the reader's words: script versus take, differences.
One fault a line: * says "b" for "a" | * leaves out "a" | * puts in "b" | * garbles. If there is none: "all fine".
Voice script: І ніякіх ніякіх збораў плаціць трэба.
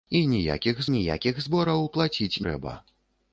all fine